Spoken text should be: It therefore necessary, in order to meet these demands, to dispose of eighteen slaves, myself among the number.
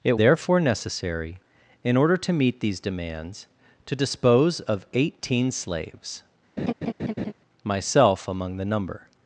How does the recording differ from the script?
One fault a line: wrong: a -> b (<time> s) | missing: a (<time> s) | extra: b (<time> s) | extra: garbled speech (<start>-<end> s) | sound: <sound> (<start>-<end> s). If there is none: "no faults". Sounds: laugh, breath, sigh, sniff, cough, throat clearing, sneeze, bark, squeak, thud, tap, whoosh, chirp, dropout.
sound: laugh (6.6-7.3 s)